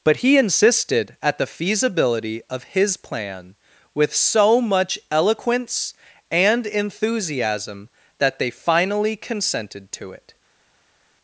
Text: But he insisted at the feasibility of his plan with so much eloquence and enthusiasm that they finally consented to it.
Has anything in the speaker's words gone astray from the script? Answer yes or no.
no